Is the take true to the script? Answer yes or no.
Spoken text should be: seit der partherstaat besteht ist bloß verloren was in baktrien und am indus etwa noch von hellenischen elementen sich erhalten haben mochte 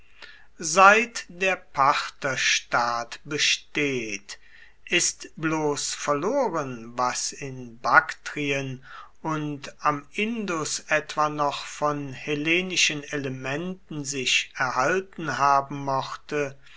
yes